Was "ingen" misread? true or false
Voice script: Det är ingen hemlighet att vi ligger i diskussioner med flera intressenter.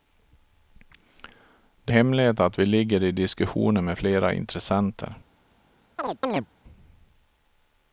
true